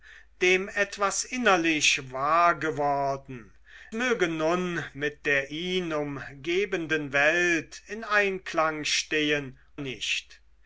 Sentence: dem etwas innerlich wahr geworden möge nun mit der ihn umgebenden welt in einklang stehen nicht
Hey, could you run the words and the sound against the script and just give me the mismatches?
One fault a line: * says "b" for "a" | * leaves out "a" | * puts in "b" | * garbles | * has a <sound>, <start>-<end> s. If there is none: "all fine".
all fine